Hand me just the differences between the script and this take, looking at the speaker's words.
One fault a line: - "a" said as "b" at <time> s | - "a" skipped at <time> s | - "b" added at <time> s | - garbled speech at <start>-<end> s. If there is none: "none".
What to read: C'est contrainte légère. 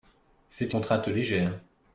none